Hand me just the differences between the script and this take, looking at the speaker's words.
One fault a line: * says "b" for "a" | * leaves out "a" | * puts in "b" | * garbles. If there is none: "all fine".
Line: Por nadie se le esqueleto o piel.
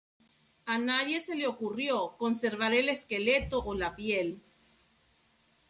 * says "A" for "Por"
* puts in "ocurrió conservar el"
* puts in "la"